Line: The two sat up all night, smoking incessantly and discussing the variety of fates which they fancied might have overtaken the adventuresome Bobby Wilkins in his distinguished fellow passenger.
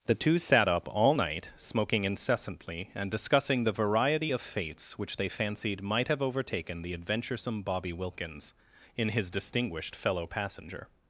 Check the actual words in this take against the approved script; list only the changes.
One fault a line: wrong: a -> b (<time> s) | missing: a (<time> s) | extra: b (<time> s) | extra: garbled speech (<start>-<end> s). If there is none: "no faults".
no faults